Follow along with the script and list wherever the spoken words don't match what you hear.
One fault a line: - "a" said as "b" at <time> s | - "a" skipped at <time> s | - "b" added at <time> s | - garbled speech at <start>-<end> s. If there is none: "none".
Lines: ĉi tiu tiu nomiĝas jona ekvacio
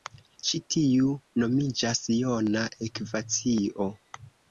- "tiu" skipped at 1.1 s